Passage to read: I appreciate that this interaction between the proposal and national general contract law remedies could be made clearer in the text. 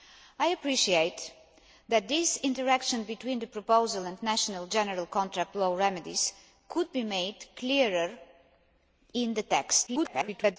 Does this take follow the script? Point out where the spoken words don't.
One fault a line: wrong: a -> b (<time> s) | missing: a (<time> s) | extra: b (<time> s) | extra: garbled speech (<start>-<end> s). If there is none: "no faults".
extra: garbled speech (9.9-10.6 s)